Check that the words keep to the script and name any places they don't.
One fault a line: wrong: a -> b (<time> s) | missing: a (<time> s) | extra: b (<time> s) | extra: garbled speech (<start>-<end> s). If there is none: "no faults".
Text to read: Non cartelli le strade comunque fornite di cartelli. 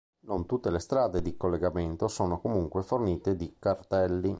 wrong: cartelli -> tutte (0.5 s)
extra: di collegamento sono (1.2 s)